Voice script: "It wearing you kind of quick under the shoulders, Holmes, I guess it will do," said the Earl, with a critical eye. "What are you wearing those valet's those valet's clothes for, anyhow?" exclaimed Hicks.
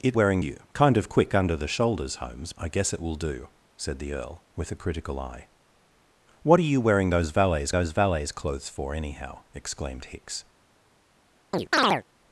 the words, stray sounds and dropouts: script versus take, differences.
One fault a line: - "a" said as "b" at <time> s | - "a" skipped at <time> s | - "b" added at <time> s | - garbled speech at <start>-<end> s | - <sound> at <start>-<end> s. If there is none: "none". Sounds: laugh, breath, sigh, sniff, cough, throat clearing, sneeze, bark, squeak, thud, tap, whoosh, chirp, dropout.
- chirp at 11.5-12.0 s